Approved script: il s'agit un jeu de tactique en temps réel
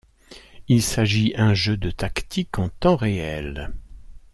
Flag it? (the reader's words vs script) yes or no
no